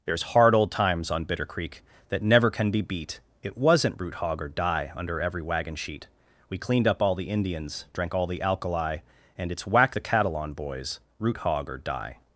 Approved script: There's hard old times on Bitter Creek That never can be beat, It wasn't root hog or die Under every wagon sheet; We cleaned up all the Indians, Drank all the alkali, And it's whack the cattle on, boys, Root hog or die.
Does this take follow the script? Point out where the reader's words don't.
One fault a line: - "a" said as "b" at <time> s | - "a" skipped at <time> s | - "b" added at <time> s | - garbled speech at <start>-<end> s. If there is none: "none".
none